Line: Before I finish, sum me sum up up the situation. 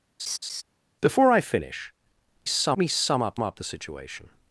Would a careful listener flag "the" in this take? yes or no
no